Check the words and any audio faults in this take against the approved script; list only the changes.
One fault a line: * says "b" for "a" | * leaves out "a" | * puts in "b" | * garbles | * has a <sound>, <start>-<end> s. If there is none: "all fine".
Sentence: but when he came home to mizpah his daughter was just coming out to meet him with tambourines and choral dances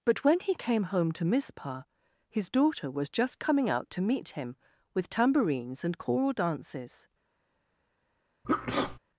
* has a sneeze, 8.4-9.0 s